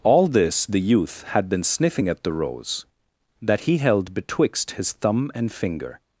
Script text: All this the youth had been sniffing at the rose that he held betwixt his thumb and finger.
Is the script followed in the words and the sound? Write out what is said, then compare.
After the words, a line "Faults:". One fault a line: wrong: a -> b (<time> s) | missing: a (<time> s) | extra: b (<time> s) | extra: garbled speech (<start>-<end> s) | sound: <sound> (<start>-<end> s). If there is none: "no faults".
All this the youth had been sniffing at the rose that he held betwixt his thumb and finger.
Faults:
no faults